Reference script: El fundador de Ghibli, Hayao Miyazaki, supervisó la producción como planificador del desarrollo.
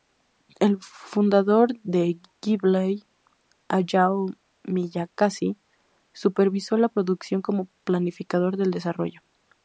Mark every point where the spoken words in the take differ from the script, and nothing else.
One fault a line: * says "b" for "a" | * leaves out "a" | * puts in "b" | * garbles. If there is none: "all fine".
all fine